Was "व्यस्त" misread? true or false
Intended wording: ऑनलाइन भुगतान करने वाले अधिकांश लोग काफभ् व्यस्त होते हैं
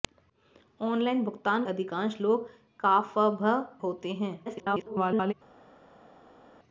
true